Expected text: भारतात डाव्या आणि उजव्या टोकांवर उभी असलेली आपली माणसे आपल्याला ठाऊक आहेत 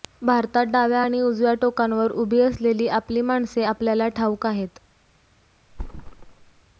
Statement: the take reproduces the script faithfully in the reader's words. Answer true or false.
true